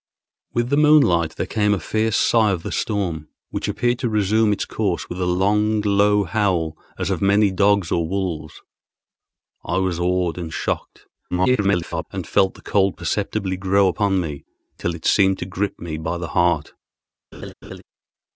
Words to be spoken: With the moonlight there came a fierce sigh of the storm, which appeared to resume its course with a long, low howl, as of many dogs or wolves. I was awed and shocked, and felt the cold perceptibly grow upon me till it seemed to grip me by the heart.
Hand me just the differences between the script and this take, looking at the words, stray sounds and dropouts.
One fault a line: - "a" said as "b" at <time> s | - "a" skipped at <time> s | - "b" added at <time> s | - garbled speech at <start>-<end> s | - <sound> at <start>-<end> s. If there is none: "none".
- garbled speech at 11.3-12.0 s
- laugh at 17.3-17.8 s